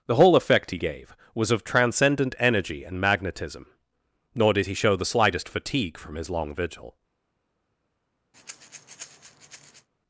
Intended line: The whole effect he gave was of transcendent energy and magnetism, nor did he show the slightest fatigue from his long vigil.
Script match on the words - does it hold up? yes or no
yes